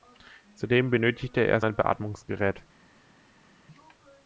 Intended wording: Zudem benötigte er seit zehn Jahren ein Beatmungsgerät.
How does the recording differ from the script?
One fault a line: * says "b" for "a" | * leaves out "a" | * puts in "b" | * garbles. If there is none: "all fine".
* leaves out "seit zehn Jahren"